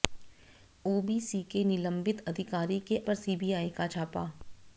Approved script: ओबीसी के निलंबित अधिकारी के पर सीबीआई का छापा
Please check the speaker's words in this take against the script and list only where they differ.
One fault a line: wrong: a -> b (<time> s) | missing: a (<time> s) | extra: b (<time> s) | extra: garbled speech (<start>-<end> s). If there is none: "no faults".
no faults